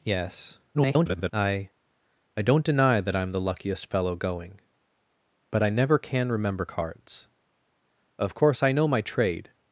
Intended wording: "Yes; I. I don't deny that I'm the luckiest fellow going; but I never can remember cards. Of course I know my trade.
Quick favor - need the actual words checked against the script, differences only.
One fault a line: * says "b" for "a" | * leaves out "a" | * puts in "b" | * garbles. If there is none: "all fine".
* garbles